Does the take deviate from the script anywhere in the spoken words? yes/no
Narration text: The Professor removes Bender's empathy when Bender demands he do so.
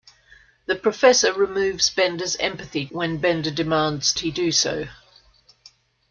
no